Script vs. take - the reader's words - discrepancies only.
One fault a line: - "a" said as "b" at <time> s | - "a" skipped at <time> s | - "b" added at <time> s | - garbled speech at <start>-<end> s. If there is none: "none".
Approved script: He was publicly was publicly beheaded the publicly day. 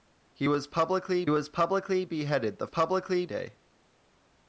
none